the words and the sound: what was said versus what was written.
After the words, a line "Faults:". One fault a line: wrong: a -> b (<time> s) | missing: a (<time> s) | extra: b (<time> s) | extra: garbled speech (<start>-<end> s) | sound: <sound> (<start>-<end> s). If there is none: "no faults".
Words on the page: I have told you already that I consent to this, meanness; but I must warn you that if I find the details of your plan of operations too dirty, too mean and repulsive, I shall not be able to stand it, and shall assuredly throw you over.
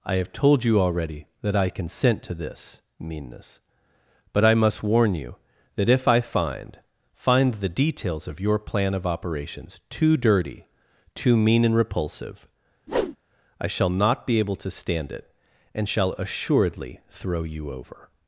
I have told you already that I consent to this, meanness; but I must warn you that if I find find the details of your plan of operations too dirty, too mean and repulsive, I shall not be able to stand it, and shall assuredly throw you over.
Faults:
extra: find (7.1 s)
sound: whoosh (12.9-13.2 s)